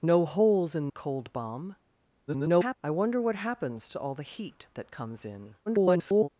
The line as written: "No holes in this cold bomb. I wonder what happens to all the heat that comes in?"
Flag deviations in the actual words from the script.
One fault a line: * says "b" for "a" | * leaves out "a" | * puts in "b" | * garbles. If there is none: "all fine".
* leaves out "this"
* garbles
* garbles